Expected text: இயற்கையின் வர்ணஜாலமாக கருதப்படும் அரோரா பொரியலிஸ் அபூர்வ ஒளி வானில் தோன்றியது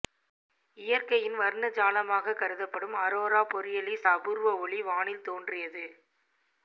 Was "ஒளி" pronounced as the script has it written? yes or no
yes